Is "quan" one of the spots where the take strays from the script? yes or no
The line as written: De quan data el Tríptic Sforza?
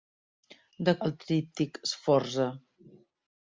yes